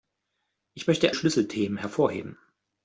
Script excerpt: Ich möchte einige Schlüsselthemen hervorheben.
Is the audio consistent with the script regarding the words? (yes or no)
no